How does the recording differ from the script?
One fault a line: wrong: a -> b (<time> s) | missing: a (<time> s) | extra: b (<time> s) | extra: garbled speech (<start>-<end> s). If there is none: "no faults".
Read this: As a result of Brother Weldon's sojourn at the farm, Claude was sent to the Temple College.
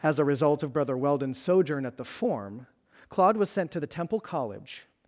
wrong: farm -> form (2.0 s)